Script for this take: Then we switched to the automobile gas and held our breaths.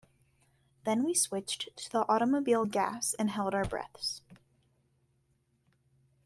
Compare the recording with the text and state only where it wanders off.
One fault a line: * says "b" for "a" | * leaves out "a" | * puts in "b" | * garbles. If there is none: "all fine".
all fine